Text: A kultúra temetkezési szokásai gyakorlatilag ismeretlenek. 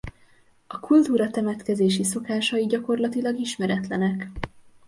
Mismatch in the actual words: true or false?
false